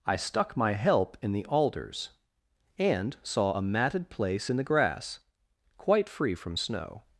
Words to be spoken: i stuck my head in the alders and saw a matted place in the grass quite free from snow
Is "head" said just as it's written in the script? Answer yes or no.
no